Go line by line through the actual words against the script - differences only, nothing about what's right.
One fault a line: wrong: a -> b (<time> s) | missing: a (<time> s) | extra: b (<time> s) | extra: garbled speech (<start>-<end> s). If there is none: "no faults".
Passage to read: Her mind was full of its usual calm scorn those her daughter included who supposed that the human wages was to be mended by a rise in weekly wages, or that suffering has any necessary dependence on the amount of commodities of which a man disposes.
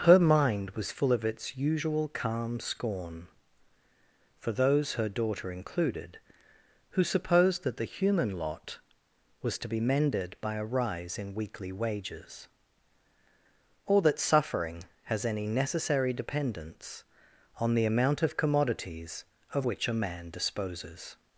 extra: for (4.4 s)
wrong: wages -> lot (8.3 s)